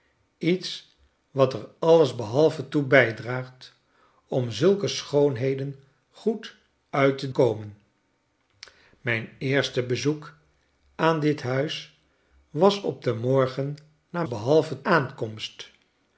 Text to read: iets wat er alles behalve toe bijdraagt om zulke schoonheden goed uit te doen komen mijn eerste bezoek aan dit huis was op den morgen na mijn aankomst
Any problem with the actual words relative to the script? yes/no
yes